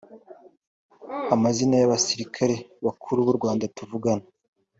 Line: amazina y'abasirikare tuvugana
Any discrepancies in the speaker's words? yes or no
yes